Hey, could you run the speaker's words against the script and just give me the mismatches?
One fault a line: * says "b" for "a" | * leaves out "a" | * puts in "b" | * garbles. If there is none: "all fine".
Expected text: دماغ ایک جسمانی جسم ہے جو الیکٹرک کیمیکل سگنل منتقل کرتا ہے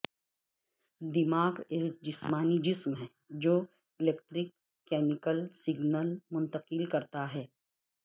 all fine